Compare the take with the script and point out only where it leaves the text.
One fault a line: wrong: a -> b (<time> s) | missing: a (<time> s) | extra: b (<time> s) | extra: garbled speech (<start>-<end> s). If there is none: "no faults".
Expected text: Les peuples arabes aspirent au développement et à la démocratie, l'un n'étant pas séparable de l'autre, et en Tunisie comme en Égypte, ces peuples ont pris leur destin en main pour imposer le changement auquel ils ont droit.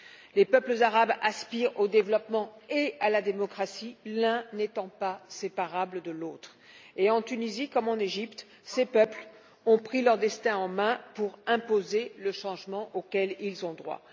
no faults